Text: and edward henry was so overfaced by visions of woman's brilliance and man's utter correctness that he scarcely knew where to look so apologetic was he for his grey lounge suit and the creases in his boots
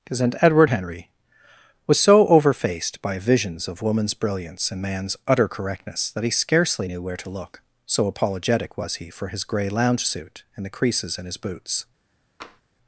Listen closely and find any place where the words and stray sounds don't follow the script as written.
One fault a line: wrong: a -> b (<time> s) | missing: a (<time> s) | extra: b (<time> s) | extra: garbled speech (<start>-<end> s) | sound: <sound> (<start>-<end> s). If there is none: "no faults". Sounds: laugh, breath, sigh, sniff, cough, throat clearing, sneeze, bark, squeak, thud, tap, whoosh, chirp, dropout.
sound: tap (12.4-12.6 s)